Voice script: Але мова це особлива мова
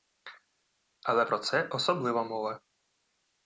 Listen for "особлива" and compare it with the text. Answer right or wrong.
right